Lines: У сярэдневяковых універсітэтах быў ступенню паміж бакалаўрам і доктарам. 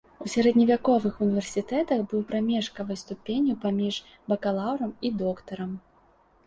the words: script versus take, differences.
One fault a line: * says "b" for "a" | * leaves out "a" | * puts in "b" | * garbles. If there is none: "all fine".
* puts in "прамежкавай"